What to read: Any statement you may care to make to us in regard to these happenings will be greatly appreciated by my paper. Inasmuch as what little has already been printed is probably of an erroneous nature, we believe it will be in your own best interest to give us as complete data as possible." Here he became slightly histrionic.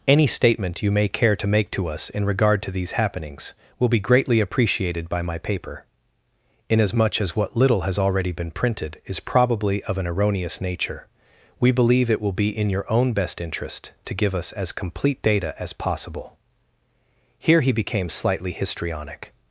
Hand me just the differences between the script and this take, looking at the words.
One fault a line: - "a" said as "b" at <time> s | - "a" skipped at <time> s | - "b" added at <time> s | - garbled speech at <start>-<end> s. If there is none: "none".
none